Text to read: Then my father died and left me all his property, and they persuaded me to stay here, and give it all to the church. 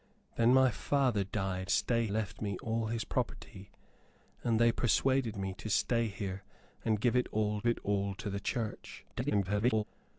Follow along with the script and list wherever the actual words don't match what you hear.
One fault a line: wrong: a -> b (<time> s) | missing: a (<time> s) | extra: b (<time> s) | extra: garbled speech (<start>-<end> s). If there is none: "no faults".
wrong: and -> stay (1.7 s)
extra: it all (7.7 s)
extra: garbled speech (9.1-9.8 s)